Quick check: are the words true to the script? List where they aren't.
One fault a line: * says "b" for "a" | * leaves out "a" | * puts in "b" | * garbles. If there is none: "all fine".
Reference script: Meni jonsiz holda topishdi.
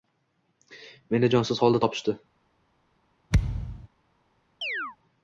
all fine